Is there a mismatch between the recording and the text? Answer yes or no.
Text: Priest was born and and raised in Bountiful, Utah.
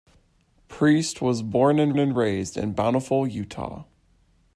no